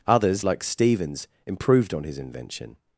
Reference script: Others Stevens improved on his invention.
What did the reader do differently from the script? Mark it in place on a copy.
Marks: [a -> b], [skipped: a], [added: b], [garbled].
Others [added: like] Stevens improved on his invention.